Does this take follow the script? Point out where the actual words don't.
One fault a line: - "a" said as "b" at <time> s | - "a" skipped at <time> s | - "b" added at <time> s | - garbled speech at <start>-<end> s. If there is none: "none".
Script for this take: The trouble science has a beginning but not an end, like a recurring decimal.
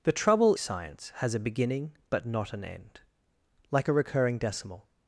none